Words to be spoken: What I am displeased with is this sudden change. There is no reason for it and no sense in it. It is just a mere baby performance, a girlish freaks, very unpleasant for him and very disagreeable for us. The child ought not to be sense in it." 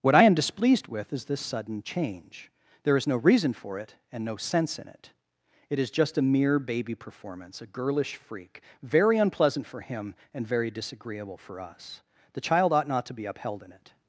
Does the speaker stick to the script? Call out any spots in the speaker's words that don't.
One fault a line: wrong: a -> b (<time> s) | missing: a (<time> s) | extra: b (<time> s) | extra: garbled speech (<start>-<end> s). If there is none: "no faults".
wrong: freaks -> freak (8.2 s)
wrong: sense -> upheld (13.3 s)